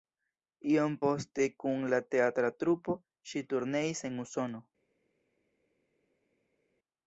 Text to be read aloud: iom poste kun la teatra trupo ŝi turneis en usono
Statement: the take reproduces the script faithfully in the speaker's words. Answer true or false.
true